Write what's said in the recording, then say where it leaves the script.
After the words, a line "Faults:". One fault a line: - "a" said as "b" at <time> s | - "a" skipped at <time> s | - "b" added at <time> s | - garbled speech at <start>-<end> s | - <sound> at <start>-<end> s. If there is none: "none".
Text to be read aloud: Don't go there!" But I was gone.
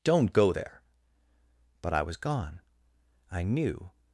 Don't go there!" But I was gone. I knew
Faults:
- "I knew" added at 3.3 s